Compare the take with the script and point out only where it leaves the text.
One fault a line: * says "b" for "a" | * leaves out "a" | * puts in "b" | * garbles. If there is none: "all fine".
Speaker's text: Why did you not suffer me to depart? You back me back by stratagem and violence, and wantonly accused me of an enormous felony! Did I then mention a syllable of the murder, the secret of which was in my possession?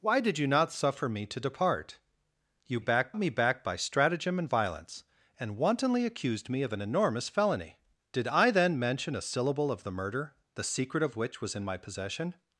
all fine